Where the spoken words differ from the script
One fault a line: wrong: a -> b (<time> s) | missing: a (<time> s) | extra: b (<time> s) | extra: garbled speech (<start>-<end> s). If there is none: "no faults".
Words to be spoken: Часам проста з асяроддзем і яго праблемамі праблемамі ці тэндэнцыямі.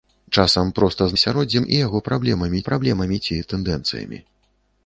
no faults